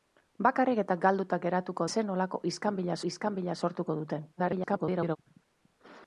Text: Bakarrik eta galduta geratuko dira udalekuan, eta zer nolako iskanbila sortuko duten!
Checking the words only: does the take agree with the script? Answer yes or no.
no